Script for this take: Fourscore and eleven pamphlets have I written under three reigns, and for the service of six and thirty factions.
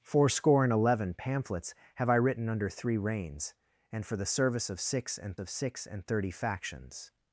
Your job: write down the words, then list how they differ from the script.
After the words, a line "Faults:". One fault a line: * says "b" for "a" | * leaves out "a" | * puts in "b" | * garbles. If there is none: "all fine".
Fourscore and eleven pamphlets have I written under three reigns, and for the service of six and of six and thirty factions.
Faults:
* puts in "of six and"